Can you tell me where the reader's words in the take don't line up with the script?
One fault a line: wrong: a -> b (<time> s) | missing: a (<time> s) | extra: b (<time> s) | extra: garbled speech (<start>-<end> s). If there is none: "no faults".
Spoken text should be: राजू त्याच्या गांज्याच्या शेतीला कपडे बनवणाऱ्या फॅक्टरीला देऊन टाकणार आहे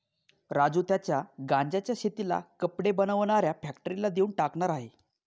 no faults